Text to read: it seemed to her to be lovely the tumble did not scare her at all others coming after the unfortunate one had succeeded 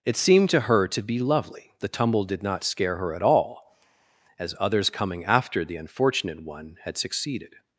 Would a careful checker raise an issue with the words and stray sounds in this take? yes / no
yes